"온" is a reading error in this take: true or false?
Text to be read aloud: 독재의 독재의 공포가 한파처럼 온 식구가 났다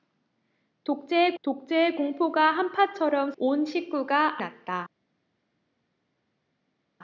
false